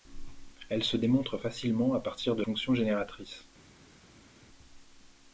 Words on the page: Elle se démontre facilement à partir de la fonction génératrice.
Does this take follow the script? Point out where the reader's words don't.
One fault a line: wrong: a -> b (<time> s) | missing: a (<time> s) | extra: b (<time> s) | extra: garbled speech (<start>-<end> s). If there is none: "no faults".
missing: la (2.4 s)